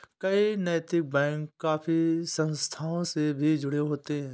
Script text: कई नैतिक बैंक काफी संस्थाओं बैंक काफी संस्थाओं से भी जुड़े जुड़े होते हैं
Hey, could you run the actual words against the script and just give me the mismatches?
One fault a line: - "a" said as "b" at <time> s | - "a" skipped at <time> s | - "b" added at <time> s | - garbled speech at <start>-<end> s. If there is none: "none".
- "बैंक काफी संस्थाओं" skipped at 3.0 s
- "जुड़े" skipped at 3.8 s